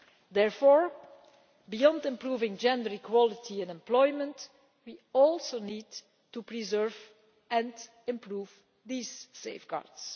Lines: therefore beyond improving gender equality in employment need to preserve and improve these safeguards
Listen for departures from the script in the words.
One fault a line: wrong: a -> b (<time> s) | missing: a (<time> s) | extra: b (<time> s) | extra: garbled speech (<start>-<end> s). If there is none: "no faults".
extra: we also (4.8 s)